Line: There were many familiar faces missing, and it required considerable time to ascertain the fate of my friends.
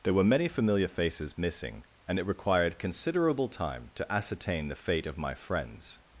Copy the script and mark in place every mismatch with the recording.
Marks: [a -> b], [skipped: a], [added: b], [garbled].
There were many familiar faces missing, and it required considerable time to ascertain the fate of my friends.